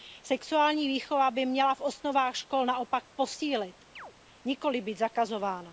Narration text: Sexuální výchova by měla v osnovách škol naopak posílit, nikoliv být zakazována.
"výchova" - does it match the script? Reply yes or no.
yes